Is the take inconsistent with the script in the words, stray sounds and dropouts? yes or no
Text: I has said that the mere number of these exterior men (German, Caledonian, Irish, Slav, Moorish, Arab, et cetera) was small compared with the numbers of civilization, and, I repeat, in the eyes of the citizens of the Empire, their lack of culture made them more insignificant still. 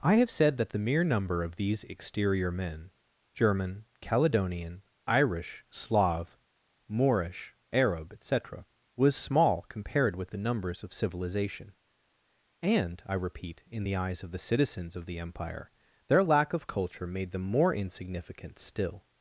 yes